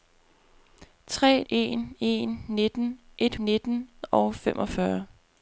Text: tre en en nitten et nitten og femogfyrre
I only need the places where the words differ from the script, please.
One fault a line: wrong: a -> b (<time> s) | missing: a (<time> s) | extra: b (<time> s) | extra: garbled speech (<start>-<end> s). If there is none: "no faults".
no faults